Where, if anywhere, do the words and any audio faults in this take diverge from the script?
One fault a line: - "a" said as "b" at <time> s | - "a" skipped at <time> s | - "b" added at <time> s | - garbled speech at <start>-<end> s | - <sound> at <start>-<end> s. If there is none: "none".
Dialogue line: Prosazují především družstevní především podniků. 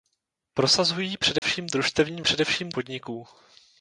- dropout at 1.4-1.4 s